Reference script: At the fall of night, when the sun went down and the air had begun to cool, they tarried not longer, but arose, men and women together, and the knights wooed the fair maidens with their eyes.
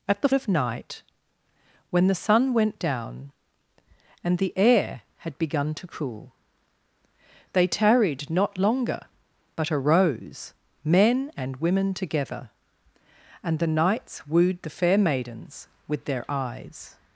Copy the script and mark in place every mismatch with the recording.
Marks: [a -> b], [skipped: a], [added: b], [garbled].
At the [skipped: fall] of night, when the sun went down and the air had begun to cool, they tarried not longer, but arose, men and women together, and the knights wooed the fair maidens with their eyes.